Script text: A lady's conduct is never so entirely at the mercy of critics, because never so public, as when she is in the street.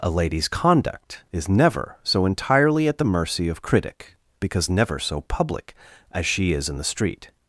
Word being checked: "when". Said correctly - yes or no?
no